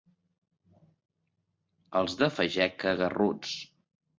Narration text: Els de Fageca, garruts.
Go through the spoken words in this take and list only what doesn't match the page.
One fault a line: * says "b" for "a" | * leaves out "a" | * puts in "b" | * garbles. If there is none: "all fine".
all fine